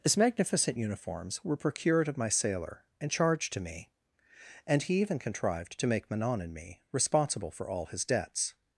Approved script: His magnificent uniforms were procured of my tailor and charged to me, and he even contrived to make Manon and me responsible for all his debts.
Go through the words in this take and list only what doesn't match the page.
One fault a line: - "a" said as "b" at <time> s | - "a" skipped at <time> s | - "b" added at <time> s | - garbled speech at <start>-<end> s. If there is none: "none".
- "tailor" said as "sailor" at 2.3 s